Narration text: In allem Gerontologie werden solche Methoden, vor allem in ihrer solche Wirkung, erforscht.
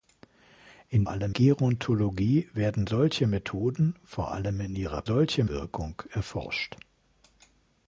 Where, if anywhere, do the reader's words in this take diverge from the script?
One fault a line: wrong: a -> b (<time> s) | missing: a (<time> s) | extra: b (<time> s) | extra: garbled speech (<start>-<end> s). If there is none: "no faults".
no faults